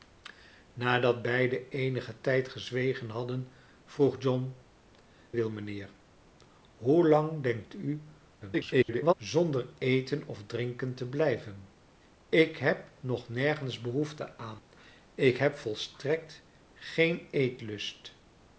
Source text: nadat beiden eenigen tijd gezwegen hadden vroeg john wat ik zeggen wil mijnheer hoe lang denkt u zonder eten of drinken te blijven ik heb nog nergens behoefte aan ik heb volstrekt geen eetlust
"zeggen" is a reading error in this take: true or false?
true